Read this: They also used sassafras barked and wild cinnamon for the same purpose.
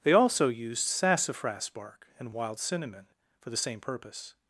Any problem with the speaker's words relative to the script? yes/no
yes